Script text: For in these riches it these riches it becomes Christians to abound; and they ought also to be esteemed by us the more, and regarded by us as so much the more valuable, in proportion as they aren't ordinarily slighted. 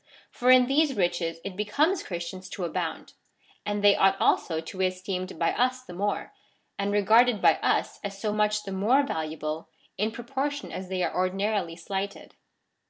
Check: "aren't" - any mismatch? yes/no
yes